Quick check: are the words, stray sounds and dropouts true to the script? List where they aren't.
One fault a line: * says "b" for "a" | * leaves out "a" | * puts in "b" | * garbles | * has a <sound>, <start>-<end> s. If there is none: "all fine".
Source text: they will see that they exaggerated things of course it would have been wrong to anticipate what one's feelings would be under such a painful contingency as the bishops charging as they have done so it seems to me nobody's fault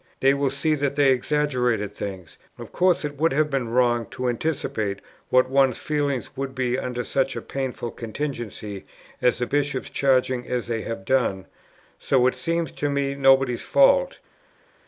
all fine